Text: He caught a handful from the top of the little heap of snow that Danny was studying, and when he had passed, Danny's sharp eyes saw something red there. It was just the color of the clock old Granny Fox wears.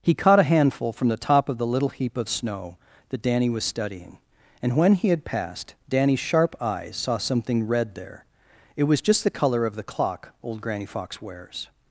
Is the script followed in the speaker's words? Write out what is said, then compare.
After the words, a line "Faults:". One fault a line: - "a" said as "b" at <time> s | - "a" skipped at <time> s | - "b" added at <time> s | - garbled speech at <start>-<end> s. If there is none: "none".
He caught a handful from the top of the little heap of snow that Danny was studying, and when he had passed, Danny's sharp eyes saw something red there. It was just the color of the clock old Granny Fox wears.
Faults:
none